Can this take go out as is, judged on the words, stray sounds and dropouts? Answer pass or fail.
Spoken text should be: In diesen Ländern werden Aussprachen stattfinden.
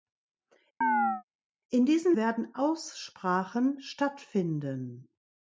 fail